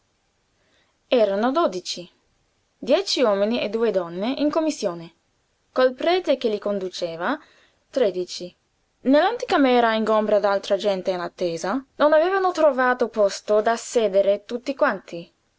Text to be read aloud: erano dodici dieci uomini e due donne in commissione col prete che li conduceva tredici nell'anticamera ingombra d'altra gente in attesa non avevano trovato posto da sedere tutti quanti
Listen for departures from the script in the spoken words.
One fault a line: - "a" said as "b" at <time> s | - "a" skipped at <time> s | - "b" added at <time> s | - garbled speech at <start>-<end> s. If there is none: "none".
none